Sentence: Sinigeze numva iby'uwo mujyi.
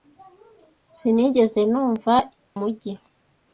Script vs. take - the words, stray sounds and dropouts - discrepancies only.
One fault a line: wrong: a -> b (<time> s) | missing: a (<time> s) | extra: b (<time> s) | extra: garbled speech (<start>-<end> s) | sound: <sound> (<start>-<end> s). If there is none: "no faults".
missing: iby'uwo (2.1 s)